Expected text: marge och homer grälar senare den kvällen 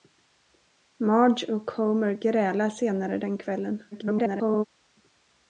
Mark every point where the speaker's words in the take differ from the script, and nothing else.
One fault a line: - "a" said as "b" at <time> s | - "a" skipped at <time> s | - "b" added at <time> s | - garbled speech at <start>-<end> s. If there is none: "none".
- garbled speech at 3.9-4.6 s